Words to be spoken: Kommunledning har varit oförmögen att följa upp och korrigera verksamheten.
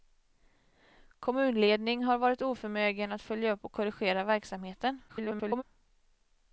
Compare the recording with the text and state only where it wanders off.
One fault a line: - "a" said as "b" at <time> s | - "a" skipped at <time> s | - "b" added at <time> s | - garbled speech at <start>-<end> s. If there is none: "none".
- garbled speech at 5.1-5.6 s